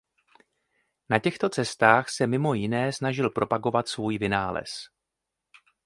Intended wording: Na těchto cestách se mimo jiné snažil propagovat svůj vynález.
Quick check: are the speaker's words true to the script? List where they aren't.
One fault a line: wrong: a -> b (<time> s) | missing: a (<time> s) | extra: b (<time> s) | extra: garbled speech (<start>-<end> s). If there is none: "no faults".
no faults